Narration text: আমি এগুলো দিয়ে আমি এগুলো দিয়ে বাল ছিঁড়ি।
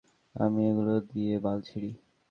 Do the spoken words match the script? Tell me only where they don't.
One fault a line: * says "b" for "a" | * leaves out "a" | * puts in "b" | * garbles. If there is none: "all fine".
* leaves out "আমি এগুলো দিয়ে"